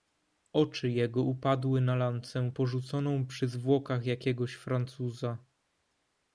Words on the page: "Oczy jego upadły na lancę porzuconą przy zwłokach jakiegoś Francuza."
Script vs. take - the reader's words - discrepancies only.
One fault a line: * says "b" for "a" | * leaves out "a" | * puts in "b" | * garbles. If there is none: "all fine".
all fine